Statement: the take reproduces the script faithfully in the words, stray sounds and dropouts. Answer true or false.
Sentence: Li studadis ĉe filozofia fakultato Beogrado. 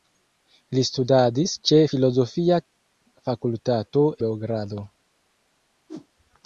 false